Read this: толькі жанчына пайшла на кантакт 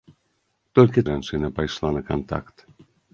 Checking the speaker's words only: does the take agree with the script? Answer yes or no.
yes